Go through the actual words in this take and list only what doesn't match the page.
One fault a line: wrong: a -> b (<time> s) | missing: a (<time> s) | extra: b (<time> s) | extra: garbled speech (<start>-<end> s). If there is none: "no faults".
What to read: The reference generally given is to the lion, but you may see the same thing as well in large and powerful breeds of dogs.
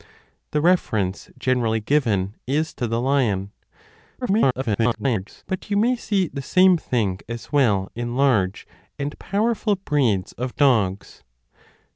extra: garbled speech (4.2-5.4 s)